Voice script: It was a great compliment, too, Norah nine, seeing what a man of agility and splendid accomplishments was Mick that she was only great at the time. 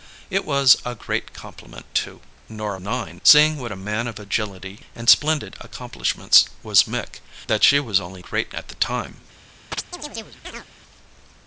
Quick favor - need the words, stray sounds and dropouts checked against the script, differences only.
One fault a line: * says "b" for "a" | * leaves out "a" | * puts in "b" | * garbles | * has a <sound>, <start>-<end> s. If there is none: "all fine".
* has a chirp, 9.7-10.7 s